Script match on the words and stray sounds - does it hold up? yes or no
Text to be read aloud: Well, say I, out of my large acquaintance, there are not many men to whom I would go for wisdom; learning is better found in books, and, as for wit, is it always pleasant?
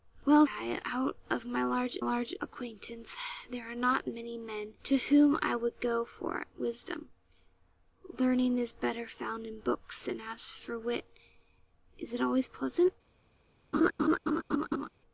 no